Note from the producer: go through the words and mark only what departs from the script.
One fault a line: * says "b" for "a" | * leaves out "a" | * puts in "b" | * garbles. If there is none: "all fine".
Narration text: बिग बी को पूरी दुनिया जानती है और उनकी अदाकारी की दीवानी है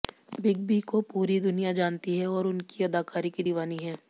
all fine